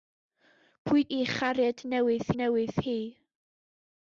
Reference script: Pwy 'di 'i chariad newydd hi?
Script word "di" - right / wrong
wrong